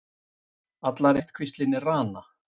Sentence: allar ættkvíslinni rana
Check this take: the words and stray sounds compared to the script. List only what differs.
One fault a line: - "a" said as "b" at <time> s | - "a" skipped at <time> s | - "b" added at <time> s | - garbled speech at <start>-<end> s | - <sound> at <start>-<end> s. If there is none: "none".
none